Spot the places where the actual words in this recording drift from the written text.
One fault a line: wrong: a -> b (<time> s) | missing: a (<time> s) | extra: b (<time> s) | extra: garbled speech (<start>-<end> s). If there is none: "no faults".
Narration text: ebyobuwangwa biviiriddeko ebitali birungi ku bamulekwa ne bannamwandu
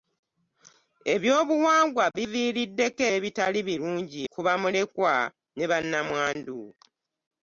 no faults